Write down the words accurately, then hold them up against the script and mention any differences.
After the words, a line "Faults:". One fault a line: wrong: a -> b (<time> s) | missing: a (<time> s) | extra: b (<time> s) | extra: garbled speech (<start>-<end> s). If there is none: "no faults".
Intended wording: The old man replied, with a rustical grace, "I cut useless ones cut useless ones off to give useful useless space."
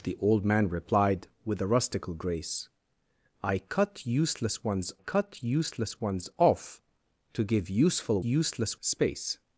The old man replied, with a rustical grace, "I cut useless ones cut useless ones off to give useful useless space."
Faults:
no faults